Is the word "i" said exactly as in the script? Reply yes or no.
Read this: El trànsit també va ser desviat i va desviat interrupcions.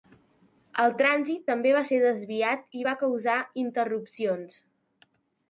yes